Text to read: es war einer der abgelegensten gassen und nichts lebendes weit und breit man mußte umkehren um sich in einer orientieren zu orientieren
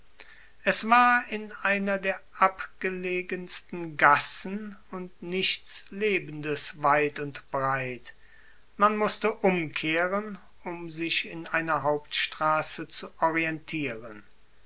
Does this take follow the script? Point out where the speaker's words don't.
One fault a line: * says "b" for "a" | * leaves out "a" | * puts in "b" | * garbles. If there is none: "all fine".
* puts in "in"
* says "hauptstraße" for "orientieren"